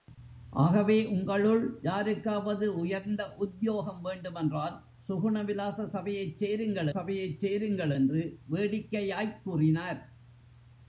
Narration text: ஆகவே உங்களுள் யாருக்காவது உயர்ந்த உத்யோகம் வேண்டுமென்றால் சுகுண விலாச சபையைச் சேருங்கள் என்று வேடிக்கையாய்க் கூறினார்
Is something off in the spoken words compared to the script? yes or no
yes